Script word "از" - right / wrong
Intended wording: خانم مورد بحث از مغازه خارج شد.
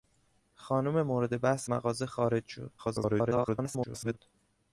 wrong